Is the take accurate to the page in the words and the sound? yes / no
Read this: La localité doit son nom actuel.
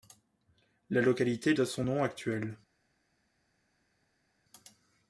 yes